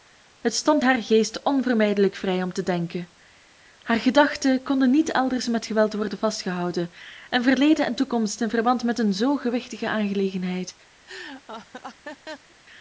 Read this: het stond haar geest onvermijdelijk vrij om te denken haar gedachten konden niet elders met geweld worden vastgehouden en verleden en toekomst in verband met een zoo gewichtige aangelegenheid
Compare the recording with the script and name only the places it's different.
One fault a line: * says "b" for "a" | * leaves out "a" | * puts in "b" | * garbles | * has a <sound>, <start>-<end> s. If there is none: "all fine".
* has a laugh, 11.1-12.6 s